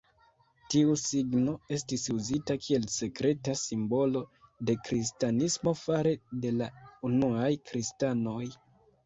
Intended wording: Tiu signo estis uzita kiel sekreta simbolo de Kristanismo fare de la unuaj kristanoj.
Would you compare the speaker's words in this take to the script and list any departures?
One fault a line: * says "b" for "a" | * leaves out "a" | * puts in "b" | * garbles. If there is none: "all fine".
all fine